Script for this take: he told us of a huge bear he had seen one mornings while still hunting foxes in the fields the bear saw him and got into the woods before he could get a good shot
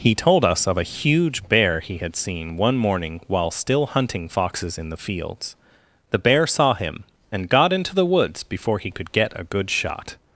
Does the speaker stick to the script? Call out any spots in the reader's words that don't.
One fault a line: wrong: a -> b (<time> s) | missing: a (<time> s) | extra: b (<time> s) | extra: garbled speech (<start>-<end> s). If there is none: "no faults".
wrong: mornings -> morning (2.8 s)